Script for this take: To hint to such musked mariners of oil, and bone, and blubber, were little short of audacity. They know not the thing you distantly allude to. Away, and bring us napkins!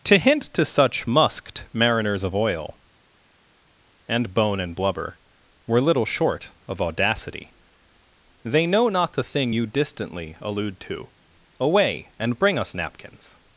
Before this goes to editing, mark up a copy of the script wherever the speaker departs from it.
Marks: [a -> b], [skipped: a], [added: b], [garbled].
To hint to such musked mariners of oil, and bone, and blubber, were little short of audacity. They know not the thing you distantly allude to. Away, and bring us napkins!